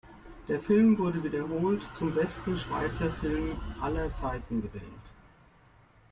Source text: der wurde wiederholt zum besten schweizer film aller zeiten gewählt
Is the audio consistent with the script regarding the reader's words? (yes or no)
no